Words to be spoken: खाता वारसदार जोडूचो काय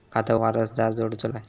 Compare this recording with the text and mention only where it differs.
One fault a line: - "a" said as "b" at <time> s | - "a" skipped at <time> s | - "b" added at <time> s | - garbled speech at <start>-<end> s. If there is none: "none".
none